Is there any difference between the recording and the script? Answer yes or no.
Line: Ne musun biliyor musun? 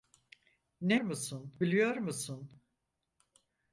no